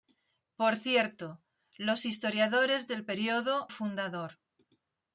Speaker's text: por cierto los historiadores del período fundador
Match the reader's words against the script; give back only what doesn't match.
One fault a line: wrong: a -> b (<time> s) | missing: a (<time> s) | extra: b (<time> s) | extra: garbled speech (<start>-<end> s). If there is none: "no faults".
no faults